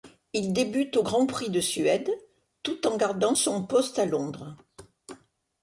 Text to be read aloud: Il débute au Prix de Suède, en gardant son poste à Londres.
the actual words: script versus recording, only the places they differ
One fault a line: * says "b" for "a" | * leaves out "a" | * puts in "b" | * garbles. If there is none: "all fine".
* puts in "Grand"
* puts in "tout"